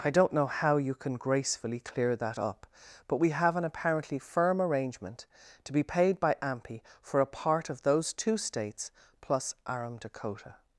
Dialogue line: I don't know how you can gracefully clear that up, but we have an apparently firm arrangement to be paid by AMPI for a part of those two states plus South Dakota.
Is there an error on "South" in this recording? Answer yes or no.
yes